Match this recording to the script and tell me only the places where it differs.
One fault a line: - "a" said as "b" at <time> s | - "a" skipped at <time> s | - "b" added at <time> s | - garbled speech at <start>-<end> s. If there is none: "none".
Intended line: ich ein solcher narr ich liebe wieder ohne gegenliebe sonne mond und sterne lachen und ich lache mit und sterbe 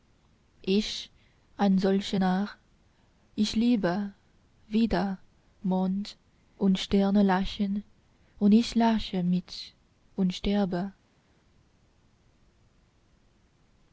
- "ohne gegenliebe sonne" skipped at 5.2 s